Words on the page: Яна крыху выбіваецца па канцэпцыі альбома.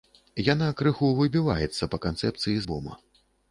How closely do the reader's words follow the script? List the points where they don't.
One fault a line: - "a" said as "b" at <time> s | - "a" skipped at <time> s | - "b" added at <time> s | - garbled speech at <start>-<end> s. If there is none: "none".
none